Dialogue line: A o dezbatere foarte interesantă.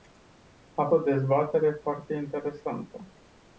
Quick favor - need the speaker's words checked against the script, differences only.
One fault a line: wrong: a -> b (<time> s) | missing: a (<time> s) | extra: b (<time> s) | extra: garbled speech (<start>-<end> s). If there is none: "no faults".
no faults